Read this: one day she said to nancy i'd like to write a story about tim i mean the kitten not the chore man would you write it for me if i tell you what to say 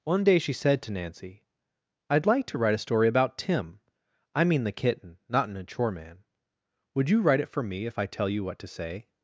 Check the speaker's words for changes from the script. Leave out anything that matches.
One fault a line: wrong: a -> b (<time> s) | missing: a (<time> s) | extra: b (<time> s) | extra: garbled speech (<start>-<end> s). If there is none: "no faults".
wrong: the -> an (5.5 s)